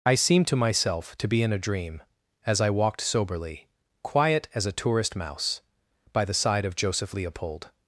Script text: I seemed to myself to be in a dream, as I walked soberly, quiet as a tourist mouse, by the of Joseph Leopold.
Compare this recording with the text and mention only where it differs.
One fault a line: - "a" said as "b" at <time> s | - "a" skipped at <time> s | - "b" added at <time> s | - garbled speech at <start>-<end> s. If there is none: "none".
- "side" added at 6.3 s